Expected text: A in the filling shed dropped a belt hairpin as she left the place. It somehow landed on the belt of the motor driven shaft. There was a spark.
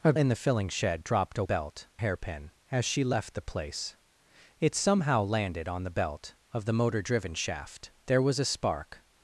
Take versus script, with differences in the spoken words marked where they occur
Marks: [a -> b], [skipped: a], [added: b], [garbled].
A in the filling shed dropped a belt hairpin as she left the place. It somehow landed on the belt of the motor driven shaft. There was a spark.